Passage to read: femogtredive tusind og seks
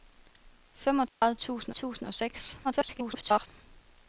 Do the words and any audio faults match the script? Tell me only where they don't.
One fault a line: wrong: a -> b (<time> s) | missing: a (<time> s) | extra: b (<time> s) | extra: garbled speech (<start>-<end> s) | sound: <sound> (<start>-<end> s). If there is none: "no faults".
sound: dropout (1.1-1.2 s)
extra: tusind (1.7 s)
extra: garbled speech (2.6-3.5 s)